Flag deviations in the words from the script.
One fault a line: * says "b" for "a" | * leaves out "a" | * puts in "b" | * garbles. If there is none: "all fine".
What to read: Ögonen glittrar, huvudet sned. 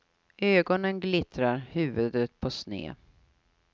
* puts in "på"